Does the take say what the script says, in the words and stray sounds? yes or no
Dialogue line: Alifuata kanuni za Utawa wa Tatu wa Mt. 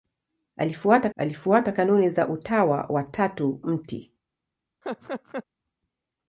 no